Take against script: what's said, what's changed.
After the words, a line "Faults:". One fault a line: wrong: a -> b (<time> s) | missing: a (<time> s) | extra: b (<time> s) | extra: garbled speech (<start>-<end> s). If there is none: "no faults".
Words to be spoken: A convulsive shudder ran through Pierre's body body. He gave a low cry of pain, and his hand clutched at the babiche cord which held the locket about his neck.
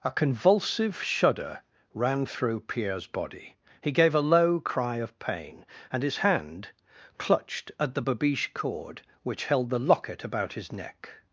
A convulsive shudder ran through Pierre's body. He gave a low cry of pain, and his hand clutched at the babiche cord which held the locket about his neck.
Faults:
missing: body (3.5 s)